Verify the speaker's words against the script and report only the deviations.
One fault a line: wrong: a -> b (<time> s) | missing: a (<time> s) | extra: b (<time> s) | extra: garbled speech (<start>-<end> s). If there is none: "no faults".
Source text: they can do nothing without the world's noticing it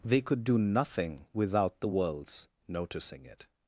wrong: can -> could (0.2 s)